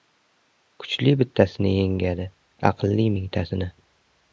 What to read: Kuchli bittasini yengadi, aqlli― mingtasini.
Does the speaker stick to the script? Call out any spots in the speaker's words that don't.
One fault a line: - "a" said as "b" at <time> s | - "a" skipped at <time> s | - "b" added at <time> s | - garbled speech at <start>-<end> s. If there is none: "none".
none